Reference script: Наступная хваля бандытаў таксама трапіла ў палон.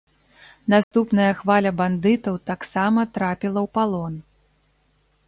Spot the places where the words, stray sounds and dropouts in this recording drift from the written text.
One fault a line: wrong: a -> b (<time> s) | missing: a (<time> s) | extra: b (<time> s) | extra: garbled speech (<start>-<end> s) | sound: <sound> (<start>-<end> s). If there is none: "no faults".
sound: dropout (0.8-0.9 s)